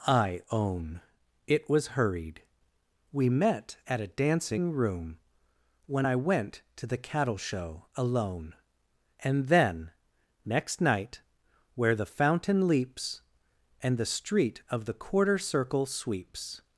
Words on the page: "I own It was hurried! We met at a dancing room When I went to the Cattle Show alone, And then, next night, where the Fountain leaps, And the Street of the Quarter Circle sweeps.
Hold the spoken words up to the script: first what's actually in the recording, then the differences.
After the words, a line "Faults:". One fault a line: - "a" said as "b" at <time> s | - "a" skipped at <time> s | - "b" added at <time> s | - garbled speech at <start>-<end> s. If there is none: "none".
"I own It was hurried! We met at a dancing room When I went to the Cattle Show alone, And then, next night, where the Fountain leaps, And the Street of the Quarter Circle sweeps.
Faults:
none